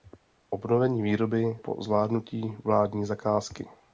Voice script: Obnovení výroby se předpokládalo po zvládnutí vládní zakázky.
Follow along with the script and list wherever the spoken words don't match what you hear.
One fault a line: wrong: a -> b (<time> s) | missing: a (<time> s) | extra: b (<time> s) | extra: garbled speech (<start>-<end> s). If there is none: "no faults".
missing: se předpokládalo (1.6 s)